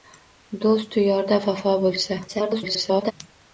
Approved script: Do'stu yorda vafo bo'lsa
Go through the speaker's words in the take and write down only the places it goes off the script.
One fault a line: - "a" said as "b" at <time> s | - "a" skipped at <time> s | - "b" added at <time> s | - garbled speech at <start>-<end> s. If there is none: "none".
- garbled speech at 2.3-3.1 s